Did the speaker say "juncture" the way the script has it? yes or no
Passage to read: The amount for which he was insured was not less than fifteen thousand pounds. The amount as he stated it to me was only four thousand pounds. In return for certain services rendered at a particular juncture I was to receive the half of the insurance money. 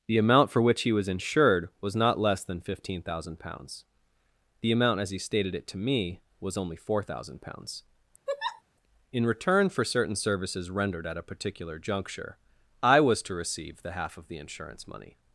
yes